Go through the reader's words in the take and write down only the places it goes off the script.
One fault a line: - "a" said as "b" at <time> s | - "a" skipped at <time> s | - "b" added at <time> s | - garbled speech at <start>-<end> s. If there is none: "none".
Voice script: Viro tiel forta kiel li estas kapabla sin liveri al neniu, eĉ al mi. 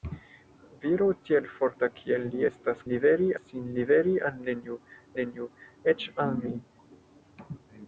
- "kapabla" said as "liveri" at 2.9 s
- "neniu" added at 5.2 s